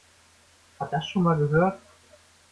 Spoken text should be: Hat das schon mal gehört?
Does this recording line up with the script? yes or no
yes